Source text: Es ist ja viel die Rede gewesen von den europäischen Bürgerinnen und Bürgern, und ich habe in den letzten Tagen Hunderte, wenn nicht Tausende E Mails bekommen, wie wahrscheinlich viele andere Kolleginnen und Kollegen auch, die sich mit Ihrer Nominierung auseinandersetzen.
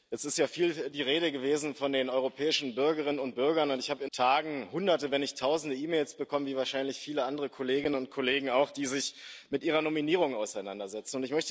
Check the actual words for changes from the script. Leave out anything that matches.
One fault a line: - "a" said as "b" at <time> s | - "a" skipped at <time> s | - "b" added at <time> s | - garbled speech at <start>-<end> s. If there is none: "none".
- "den letzten" skipped at 4.1 s